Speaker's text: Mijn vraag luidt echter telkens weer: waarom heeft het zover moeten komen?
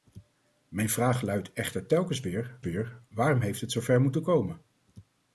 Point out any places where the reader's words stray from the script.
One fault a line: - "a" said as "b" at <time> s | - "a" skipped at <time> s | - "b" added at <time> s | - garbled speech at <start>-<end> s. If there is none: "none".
- "weer" added at 2.6 s